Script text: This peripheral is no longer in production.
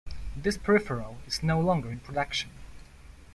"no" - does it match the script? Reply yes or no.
yes